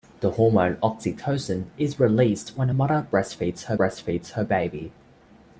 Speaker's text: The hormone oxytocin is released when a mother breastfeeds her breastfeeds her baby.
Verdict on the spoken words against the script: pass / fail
pass